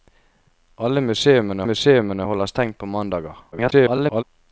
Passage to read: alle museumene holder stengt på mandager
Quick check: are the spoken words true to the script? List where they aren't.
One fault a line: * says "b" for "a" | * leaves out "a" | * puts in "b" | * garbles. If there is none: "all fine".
* puts in "museumene"
* garbles